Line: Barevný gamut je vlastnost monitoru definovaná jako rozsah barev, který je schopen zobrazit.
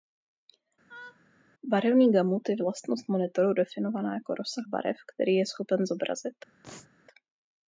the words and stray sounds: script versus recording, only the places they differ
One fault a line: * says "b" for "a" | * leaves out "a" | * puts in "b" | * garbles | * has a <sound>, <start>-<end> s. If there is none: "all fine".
* has a laugh, 0.9-1.2 s
* has a sneeze, 6.6-6.9 s